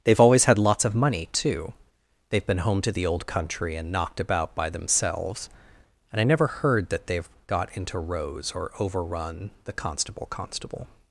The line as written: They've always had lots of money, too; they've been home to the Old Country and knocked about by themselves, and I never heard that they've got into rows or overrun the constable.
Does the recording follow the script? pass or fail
fail